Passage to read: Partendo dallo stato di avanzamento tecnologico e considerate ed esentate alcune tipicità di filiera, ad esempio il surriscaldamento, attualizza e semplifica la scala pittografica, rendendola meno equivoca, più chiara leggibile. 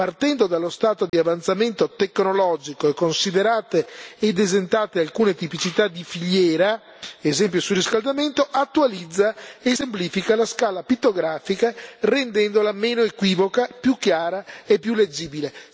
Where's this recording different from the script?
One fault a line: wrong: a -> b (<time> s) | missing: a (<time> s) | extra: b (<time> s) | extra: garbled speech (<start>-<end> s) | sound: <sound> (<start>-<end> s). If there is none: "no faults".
sound: dropout (1.1-1.1 s)
extra: e più (14.7 s)